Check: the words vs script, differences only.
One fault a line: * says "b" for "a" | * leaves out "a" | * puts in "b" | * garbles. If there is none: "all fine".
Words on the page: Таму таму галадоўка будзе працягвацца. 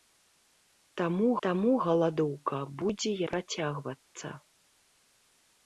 all fine